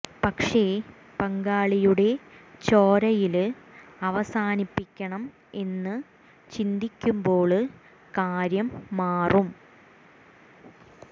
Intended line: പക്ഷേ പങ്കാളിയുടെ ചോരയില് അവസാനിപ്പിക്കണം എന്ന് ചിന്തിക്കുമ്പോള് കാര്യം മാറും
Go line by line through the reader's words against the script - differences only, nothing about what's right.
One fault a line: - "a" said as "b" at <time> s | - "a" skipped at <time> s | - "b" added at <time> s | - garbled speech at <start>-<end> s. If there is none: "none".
none